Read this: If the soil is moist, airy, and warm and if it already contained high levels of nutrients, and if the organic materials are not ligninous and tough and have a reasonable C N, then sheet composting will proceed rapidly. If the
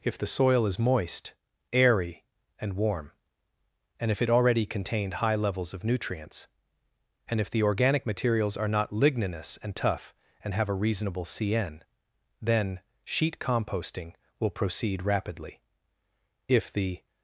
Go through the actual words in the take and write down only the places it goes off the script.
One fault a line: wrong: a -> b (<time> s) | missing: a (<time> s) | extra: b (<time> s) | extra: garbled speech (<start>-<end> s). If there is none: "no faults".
no faults